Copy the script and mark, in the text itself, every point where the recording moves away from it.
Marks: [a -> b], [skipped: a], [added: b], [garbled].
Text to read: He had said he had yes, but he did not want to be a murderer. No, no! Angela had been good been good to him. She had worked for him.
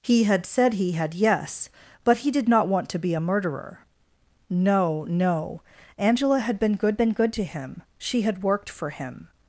He had said he had yes, but he did not want to be a murderer. No, no! Angela had been good been good to him. She had worked for him.